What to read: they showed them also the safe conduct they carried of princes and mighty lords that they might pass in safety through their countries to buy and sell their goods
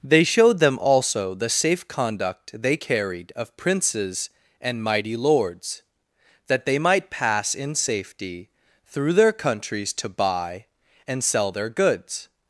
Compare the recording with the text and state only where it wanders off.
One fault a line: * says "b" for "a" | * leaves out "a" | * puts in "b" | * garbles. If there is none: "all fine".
all fine